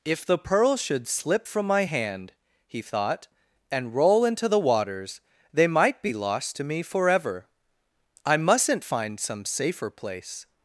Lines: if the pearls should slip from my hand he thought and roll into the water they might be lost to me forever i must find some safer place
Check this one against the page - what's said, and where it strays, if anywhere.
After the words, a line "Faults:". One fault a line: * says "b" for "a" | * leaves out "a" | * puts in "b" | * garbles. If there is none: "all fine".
if the pearls should slip from my hand he thought and roll into the waters they might be lost to me forever i mustn't find some safer place
Faults:
* says "waters" for "water"
* says "mustn't" for "must"